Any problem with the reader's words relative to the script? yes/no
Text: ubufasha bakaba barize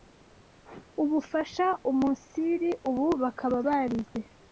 yes